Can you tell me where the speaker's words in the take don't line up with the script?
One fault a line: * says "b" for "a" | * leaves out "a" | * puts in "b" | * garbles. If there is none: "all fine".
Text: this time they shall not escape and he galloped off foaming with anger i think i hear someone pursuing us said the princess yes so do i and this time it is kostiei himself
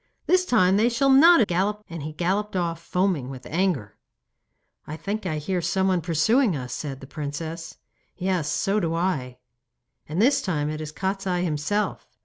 * says "galloped" for "escape"